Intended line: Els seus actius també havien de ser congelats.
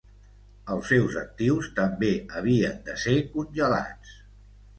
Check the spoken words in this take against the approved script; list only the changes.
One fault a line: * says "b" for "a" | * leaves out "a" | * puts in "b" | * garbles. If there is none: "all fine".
all fine